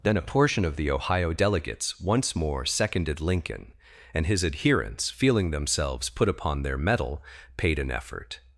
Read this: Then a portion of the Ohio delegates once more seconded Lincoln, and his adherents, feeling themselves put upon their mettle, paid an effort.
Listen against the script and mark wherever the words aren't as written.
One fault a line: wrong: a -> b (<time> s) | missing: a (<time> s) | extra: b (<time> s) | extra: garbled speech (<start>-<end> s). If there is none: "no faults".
no faults